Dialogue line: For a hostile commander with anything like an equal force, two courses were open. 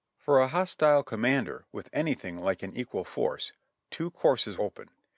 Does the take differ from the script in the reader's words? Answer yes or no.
yes